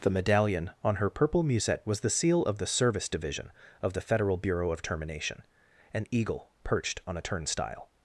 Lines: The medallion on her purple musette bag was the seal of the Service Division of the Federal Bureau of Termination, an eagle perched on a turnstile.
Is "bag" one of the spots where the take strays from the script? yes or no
yes